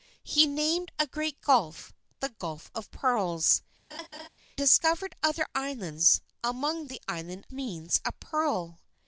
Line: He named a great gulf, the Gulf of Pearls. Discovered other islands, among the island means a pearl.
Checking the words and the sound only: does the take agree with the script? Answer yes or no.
no